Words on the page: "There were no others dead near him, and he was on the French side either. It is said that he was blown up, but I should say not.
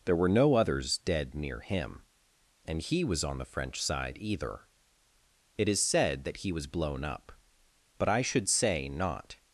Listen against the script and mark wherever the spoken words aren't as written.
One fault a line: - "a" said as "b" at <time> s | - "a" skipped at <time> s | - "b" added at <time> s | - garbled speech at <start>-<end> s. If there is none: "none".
none